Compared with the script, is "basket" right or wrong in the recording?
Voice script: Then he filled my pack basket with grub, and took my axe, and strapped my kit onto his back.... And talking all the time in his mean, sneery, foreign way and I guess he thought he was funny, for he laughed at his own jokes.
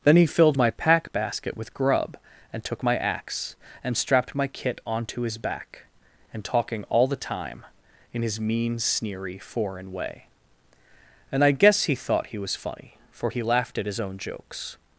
right